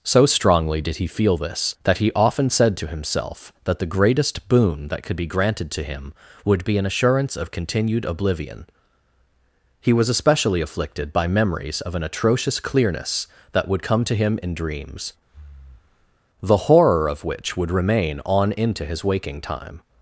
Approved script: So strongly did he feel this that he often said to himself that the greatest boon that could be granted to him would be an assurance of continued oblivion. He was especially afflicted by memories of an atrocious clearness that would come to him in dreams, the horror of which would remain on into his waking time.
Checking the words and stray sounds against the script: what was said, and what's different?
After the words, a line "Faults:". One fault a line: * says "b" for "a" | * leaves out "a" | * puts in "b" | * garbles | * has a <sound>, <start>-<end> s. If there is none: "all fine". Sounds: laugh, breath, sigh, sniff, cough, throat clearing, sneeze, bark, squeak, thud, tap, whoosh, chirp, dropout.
So strongly did he feel this that he often said to himself that the greatest boon that could be granted to him would be an assurance of continued oblivion. He was especially afflicted by memories of an atrocious clearness that would come to him in dreams, the horror of which would remain on into his waking time.
Faults:
* has a breath, 15.3-16.2 s